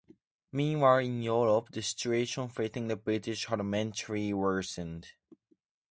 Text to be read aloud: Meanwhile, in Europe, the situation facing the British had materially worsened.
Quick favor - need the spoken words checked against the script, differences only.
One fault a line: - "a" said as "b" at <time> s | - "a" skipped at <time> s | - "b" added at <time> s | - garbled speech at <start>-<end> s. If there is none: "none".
none